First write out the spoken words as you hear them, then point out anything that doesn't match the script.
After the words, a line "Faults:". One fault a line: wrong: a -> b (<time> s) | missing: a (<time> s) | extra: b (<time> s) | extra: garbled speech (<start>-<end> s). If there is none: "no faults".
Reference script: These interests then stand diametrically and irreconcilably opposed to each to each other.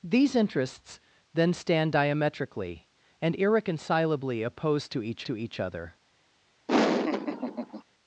These interests then stand diametrically and irreconcilably opposed to each to each other.
Faults:
no faults